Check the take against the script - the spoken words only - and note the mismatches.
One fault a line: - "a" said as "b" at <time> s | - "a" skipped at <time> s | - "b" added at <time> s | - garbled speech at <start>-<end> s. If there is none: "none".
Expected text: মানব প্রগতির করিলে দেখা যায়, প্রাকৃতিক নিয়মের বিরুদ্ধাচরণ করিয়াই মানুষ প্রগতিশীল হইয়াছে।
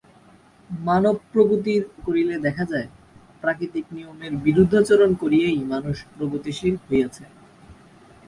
none